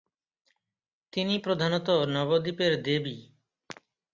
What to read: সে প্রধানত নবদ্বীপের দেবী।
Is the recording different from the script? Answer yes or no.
yes